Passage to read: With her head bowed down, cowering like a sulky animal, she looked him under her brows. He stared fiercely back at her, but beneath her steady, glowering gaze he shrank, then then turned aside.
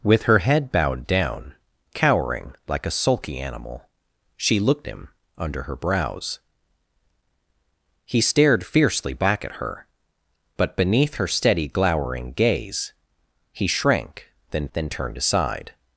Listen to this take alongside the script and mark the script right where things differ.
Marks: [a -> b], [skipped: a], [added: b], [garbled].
With her head bowed down, cowering like a sulky animal, she looked him under her brows. He stared fiercely back at her, but beneath her steady, glowering gaze he shrank, then then turned aside.